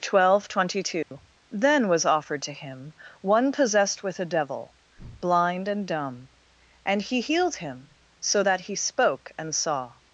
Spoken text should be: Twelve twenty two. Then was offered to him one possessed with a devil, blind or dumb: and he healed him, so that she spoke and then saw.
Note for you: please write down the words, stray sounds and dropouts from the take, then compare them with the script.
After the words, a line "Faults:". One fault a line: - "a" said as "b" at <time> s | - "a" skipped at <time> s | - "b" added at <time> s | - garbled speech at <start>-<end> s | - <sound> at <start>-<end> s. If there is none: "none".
Twelve twenty two. Then was offered to him one possessed with a devil, blind and dumb: and he healed him, so that he spoke and saw.
Faults:
- dropout at 1.0-1.1 s
- "or" said as "and" at 5.7 s
- "she" said as "he" at 8.6 s
- "then" skipped at 9.5 s